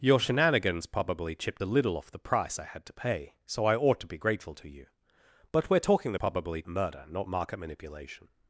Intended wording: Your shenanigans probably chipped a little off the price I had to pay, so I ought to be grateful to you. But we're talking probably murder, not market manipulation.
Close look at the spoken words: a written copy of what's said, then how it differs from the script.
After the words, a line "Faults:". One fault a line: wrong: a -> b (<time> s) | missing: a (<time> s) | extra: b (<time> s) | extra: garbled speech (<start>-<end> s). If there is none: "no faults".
Your shenanigans probably chipped a little off the price I had to pay, so I ought to be grateful to you. But we're talking probably murder, not market manipulation.
Faults:
no faults